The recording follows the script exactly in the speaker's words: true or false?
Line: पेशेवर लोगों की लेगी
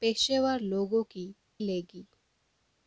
true